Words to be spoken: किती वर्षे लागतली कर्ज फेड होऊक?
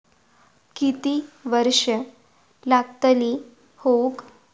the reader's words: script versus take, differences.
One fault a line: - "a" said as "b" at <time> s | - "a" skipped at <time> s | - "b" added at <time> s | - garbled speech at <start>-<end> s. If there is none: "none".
- "कर्ज फेड" skipped at 3.4 s